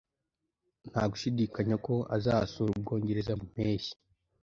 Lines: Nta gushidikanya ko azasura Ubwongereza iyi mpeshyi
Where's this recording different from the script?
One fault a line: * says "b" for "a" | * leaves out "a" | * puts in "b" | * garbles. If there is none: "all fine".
all fine